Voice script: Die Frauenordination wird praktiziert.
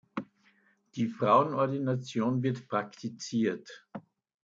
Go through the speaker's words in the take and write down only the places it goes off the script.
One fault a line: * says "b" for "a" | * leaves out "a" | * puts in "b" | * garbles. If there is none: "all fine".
all fine